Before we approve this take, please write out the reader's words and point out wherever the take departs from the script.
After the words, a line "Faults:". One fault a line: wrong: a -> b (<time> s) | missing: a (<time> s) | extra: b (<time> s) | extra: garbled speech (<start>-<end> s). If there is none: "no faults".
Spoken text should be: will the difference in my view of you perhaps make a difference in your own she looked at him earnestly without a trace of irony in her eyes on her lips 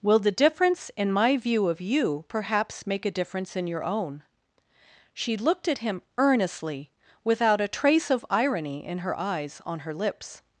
will the difference in my view of you perhaps make a difference in your own she looked at him earnestly without a trace of irony in her eyes on her lips
Faults:
no faults